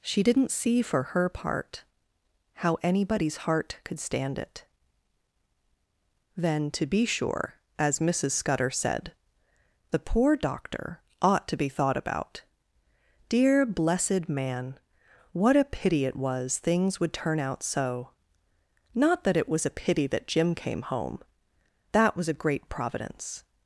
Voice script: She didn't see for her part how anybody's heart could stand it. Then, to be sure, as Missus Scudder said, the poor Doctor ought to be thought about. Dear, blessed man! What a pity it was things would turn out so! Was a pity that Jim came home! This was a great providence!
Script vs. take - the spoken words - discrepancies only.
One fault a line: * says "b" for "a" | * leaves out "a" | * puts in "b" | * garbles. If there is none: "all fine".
* puts in "Not that it"
* says "That" for "This"